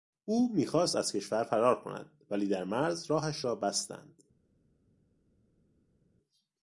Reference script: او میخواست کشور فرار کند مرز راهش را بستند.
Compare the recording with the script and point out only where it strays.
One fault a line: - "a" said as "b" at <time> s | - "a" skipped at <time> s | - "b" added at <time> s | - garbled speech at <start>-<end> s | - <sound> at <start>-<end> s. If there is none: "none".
- "از" added at 0.9 s
- "ولی در" added at 2.3 s